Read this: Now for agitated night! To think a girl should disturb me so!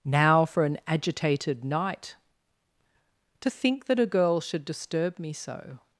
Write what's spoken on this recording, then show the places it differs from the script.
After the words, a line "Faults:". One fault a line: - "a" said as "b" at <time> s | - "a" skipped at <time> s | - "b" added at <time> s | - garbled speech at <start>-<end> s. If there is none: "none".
Now for an agitated night! To think that a girl should disturb me so!
Faults:
- "an" added at 0.6 s
- "that" added at 3.9 s